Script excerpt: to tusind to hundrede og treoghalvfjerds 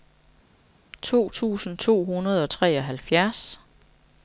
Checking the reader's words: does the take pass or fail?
pass